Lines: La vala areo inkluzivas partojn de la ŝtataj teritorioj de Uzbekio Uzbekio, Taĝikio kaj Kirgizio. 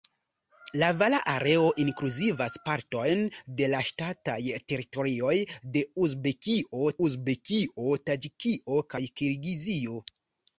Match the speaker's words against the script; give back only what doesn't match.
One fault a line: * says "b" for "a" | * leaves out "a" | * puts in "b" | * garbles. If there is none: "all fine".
all fine